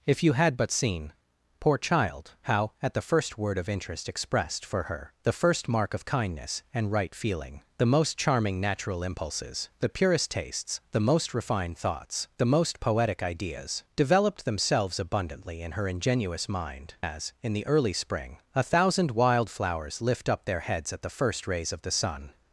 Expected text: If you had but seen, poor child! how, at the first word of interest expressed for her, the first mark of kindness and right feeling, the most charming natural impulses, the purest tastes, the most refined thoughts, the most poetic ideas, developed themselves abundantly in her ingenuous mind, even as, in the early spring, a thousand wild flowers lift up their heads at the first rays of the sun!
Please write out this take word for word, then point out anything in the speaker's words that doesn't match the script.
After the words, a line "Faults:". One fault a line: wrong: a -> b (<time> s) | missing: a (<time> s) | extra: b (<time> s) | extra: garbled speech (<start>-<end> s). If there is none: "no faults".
If you had but seen, poor child! how, at the first word of interest expressed for her, the first mark of kindness and right feeling, the most charming natural impulses, the purest tastes, the most refined thoughts, the most poetic ideas, developed themselves abundantly in her ingenuous mind, as, in the early spring, a thousand wild flowers lift up their heads at the first rays of the sun!
Faults:
missing: even (16.9 s)